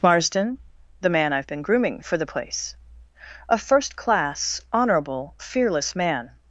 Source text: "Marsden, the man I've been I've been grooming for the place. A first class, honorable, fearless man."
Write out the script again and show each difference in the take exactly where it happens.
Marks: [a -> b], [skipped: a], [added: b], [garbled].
"Marsden, the man I've been [skipped: I've been] grooming for the place. A first class, honorable, fearless man."